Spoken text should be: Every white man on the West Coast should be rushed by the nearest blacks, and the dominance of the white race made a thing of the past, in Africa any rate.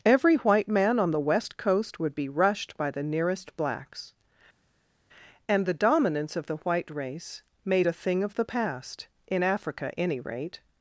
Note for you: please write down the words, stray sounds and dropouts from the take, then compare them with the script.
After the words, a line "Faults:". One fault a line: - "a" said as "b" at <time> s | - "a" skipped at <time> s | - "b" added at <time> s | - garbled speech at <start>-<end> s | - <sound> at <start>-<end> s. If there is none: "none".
Every white man on the West Coast would be rushed by the nearest blacks, and the dominance of the white race made a thing of the past, in Africa any rate.
Faults:
- "should" said as "would" at 2.0 s